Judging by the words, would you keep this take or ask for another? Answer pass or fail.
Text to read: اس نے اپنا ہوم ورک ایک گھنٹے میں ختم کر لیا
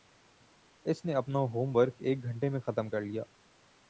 pass